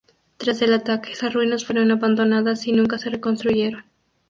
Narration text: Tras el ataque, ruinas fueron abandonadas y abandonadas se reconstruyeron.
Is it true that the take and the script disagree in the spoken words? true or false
true